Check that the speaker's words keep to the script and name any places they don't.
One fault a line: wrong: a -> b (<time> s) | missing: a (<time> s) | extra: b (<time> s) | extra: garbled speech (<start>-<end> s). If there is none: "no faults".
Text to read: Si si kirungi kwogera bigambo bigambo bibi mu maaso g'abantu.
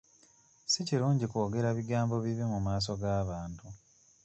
missing: si (0.8 s)
missing: bigambo (2.1 s)